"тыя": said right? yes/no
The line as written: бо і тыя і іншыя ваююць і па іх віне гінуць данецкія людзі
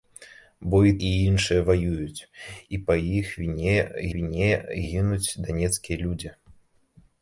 no